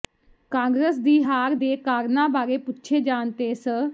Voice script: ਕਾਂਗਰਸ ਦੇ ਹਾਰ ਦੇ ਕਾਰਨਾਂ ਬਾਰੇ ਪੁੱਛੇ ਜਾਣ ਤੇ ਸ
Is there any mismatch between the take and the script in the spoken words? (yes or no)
yes